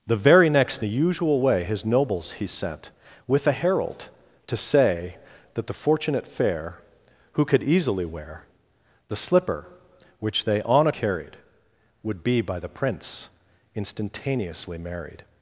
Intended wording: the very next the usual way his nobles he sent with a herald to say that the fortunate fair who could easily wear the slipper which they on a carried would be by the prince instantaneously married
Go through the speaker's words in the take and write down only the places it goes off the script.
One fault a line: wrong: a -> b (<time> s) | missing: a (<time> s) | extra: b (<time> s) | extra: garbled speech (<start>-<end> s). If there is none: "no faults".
no faults